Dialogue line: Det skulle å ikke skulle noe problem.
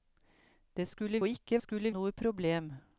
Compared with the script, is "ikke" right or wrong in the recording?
right